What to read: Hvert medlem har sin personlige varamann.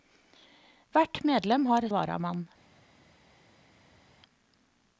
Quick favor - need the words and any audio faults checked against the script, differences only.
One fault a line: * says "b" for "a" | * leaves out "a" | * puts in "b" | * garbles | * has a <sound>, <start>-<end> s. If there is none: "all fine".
* leaves out "sin personlige"